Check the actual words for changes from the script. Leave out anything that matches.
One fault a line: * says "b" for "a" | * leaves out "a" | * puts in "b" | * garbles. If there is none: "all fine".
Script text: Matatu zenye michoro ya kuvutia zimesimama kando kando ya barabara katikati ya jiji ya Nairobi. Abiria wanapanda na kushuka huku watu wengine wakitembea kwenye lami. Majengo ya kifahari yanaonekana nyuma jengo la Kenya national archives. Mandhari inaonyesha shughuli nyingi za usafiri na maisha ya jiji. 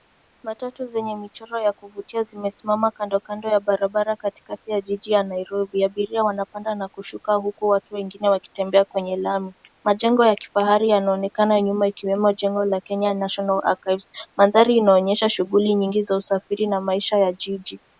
* puts in "ikiwemo"